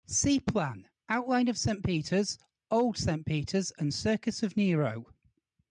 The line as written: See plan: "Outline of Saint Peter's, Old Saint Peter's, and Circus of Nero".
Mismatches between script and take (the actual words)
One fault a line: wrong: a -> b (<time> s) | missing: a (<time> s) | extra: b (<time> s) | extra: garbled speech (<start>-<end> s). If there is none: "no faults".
no faults